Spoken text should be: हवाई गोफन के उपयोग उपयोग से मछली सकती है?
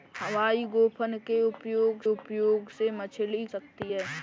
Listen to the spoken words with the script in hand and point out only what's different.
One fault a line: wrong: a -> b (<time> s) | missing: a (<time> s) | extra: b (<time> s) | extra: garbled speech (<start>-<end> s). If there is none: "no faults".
no faults